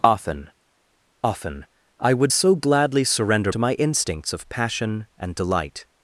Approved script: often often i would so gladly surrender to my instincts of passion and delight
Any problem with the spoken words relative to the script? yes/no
no